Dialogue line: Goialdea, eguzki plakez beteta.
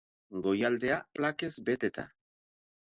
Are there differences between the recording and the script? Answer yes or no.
yes